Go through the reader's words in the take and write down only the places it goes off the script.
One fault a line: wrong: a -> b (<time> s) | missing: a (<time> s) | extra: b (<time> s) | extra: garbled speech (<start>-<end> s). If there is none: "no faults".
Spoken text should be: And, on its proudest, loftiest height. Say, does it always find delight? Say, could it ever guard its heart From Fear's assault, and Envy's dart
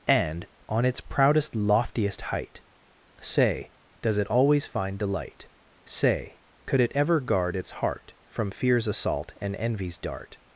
no faults